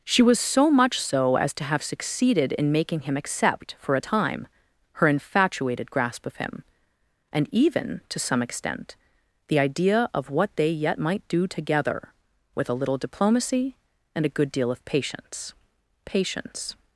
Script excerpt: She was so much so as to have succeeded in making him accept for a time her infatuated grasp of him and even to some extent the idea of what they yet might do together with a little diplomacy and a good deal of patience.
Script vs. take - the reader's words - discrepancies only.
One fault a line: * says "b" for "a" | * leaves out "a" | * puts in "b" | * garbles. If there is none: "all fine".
* puts in "patience"